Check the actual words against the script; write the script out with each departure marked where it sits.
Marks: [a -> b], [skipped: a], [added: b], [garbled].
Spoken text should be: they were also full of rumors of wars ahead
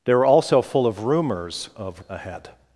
they were also full of rumors of [skipped: wars] ahead